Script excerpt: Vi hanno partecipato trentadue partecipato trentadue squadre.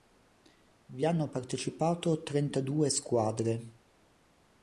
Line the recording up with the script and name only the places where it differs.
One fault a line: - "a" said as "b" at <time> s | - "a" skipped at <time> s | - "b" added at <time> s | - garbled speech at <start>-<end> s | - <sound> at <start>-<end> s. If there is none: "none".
- "partecipato trentadue" skipped at 2.9 s